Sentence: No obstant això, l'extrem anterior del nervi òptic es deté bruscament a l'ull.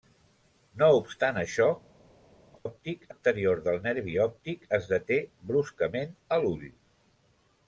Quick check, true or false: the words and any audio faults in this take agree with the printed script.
false